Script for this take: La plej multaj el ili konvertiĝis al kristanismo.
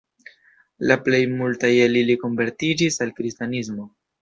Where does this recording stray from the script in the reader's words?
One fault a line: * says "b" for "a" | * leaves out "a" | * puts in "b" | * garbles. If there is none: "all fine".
all fine